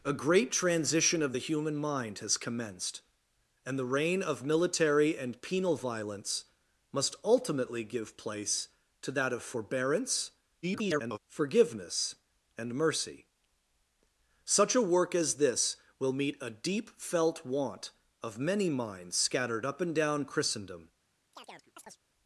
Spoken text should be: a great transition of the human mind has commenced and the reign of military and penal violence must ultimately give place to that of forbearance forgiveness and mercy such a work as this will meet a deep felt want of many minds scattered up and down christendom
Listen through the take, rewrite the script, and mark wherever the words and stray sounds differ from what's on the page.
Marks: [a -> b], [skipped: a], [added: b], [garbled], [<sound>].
a great transition of the human mind has commenced and the reign of military and penal violence must ultimately give place to that of forbearance [garbled] forgiveness and mercy such a work as this will meet a deep felt want of many minds scattered up and down christendom [chirp]